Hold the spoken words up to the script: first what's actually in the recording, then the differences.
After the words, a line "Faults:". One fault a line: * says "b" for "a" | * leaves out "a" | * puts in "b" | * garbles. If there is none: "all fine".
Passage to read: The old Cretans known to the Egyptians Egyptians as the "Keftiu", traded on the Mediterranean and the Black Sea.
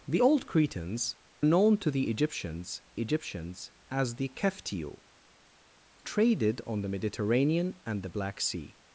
The old Cretans known to the Egyptians Egyptians as the "Keftiu", traded on the Mediterranean and the Black Sea.
Faults:
all fine